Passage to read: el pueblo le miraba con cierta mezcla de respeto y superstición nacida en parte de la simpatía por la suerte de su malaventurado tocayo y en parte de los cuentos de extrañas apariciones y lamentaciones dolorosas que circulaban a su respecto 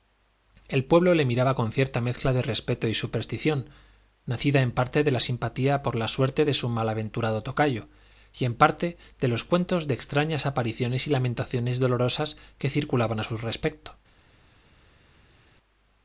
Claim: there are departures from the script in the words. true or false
false